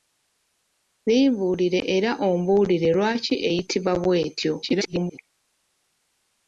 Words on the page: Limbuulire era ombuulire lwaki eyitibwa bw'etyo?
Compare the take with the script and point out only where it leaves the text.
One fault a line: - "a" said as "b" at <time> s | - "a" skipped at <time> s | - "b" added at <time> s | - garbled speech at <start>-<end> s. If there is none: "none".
- garbled speech at 4.6-5.2 s